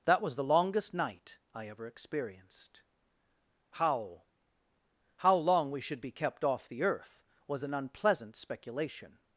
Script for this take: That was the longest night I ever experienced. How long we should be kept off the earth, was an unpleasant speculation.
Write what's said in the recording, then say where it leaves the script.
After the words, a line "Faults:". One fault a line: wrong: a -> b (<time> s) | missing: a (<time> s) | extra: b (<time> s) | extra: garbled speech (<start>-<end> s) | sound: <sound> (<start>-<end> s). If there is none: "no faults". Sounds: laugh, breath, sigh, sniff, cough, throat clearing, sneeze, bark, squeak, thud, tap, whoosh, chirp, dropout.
That was the longest night I ever experienced. How How long we should be kept off the earth, was an unpleasant speculation.
Faults:
extra: How (5.2 s)